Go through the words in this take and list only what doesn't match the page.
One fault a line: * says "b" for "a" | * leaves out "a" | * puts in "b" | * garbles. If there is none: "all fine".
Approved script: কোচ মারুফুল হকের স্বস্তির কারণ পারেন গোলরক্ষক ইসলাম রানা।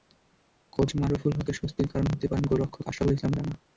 * puts in "হতে"
* puts in "আশরাফুল"